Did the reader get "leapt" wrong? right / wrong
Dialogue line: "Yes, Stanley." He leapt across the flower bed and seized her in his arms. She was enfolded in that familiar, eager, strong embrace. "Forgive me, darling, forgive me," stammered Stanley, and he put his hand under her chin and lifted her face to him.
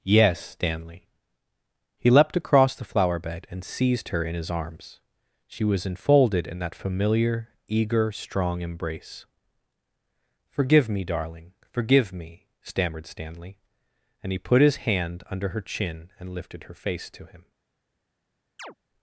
right